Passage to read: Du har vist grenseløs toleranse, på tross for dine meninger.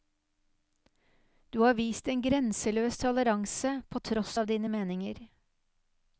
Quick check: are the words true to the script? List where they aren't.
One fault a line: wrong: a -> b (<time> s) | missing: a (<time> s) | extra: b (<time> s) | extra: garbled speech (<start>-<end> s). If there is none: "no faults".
extra: en (2.1 s)
wrong: for -> av (4.4 s)